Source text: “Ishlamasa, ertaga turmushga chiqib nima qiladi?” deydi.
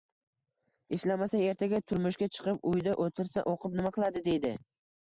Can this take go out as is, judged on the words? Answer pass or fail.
fail